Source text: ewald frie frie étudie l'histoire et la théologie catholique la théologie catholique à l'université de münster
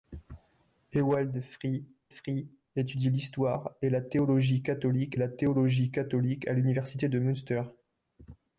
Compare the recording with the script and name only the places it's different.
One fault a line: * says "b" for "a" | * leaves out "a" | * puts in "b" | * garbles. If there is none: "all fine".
all fine